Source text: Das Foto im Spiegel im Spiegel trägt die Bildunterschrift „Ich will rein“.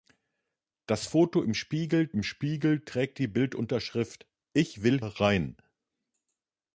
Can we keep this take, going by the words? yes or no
yes